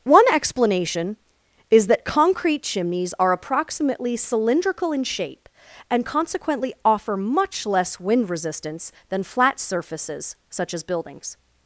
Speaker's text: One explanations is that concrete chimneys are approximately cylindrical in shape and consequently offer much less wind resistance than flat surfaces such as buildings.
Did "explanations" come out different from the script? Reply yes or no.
yes